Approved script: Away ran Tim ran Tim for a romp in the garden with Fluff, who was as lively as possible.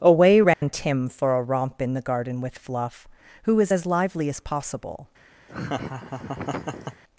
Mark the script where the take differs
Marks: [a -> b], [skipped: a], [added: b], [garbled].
Away ran Tim [skipped: ran Tim] for a romp in the garden with Fluff, who was as lively as possible.